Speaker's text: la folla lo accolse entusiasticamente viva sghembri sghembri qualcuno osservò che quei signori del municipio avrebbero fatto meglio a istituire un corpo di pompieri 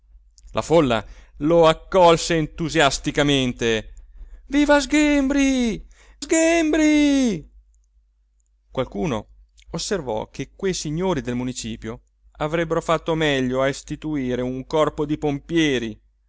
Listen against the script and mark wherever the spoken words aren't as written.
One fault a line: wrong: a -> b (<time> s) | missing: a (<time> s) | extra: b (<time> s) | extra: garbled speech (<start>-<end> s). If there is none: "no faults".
no faults